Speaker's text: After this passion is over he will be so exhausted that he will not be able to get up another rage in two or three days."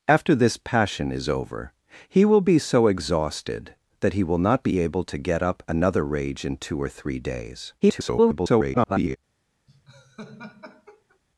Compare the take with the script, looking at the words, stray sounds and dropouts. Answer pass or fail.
fail